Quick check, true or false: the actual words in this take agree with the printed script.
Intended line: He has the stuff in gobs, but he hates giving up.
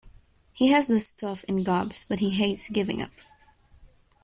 true